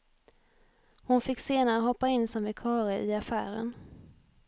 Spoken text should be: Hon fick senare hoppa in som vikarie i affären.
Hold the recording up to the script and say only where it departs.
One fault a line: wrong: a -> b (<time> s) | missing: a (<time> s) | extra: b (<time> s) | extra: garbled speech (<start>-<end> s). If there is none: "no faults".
no faults